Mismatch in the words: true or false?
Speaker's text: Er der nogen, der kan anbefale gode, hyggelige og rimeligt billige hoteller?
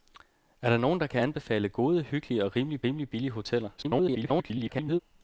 true